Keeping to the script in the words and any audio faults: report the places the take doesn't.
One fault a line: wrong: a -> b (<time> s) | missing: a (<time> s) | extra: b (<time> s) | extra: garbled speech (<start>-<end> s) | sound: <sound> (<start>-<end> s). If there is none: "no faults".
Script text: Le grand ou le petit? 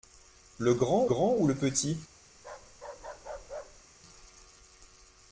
extra: grand (1.0 s)
sound: bark (2.4-3.9 s)